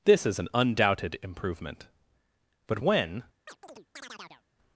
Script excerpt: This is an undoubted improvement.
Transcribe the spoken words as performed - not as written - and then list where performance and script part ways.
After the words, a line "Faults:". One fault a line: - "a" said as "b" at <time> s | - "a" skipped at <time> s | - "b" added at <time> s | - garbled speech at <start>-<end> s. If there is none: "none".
This is an undoubted improvement. But when
Faults:
- "But when" added at 2.6 s